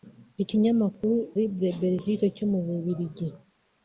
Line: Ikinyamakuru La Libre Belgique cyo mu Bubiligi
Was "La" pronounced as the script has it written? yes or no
no